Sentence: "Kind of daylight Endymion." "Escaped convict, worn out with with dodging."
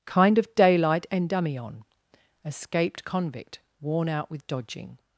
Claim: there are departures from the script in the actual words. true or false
true